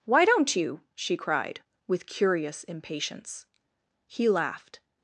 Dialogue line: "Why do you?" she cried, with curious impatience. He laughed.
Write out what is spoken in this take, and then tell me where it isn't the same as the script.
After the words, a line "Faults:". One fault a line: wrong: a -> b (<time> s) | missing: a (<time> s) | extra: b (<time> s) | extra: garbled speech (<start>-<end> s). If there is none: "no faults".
"Why don't you?" she cried, with curious impatience. He laughed.
Faults:
wrong: do -> don't (0.2 s)